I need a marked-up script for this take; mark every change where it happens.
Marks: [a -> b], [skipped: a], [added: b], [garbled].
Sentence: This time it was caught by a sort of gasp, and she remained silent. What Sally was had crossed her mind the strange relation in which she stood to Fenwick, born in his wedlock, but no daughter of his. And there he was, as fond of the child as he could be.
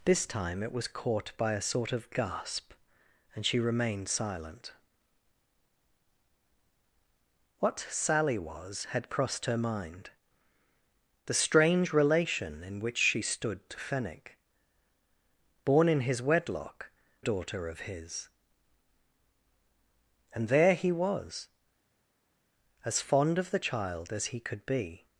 This time it was caught by a sort of gasp, and she remained silent. What Sally was had crossed her mind the strange relation in which she stood to Fenwick, born in his wedlock, [skipped: but no] daughter of his. And there he was, as fond of the child as he could be.